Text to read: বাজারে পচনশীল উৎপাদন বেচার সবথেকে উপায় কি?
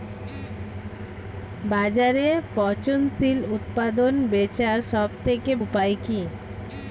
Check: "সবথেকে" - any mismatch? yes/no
no